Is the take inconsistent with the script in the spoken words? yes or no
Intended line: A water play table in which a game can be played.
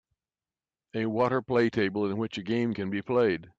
no